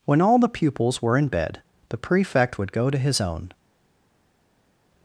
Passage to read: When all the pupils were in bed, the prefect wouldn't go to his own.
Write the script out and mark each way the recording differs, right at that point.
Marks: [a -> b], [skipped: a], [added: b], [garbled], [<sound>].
When all the pupils were in bed, the prefect [wouldn't -> would] go to his own.